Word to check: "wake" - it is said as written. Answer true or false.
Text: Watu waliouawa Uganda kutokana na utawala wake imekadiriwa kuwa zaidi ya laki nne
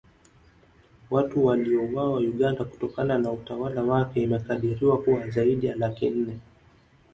true